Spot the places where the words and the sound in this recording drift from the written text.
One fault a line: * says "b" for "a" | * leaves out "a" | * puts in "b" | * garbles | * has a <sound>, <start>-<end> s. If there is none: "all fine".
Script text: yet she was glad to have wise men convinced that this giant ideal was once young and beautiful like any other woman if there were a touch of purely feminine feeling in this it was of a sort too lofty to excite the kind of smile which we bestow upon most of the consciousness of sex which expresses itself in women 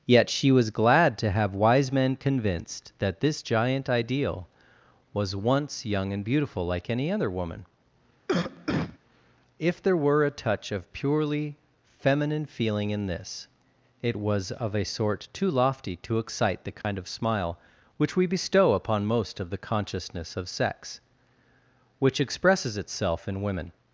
* has a cough, 8.3-9.0 s
* has a dropout, 16.8-16.8 s